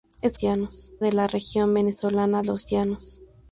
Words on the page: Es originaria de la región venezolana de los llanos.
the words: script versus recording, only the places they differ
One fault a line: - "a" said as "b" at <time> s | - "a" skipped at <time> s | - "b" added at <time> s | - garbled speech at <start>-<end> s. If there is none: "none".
- "originaria" said as "llanos" at 0.4 s
- "de" skipped at 2.4 s